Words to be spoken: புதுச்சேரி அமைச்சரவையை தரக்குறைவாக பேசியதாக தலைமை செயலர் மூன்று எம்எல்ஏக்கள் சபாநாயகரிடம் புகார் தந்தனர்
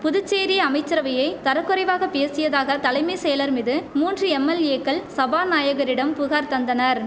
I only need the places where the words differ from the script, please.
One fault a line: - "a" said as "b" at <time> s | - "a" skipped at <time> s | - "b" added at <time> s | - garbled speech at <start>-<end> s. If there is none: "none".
- "மீது" added at 3.5 s